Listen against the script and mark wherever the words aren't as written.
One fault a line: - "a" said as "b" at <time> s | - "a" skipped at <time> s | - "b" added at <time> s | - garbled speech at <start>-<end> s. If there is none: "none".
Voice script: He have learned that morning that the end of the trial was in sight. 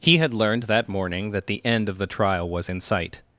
- "have" said as "had" at 0.2 s